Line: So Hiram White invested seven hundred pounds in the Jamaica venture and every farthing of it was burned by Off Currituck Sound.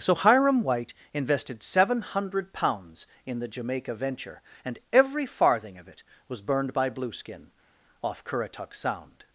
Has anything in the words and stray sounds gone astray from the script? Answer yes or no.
yes